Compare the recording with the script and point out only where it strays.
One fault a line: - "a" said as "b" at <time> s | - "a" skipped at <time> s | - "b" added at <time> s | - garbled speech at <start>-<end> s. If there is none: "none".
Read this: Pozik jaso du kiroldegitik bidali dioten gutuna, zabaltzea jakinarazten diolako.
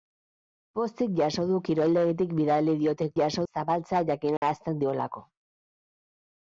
- "gutuna" said as "jaso" at 3.2 s